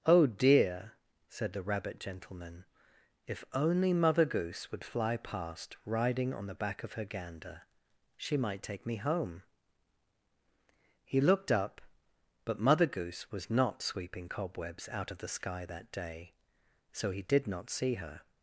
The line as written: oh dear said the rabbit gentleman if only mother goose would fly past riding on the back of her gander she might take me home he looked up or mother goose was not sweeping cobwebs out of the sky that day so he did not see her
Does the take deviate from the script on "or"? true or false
true